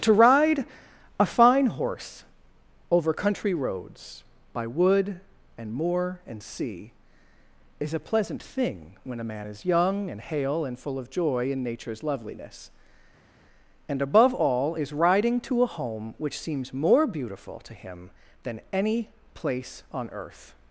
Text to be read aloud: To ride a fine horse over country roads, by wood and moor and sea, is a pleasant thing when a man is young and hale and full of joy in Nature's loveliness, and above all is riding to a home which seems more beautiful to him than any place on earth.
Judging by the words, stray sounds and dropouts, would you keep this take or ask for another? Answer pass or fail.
pass